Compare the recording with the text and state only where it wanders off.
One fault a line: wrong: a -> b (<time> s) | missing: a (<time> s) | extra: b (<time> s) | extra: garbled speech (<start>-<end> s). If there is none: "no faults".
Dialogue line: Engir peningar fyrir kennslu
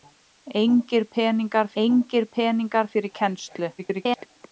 extra: engir peningar (1.8 s)
extra: garbled speech (3.8-4.3 s)